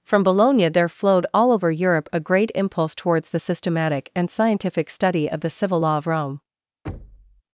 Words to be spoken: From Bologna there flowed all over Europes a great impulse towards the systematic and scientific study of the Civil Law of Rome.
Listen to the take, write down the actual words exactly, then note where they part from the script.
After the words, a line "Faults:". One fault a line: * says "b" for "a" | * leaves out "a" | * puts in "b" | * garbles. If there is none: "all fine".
From Bologna there flowed all over Europe a great impulse towards the systematic and scientific study of the Civil Law of Rome.
Faults:
* says "Europe" for "Europes"